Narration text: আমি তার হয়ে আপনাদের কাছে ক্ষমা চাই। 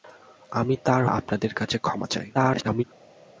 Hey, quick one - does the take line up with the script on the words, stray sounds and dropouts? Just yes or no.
no